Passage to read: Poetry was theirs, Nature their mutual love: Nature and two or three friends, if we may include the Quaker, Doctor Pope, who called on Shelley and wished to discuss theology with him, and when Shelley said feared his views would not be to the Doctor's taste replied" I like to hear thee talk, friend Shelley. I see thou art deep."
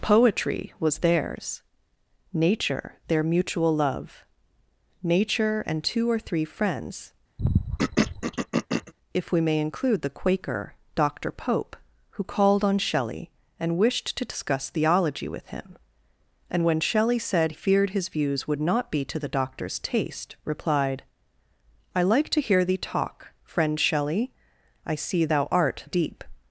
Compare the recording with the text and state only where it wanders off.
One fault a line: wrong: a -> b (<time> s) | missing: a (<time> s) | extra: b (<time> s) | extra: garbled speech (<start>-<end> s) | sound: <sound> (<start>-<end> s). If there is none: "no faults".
sound: throat clearing (7.4-8.9 s)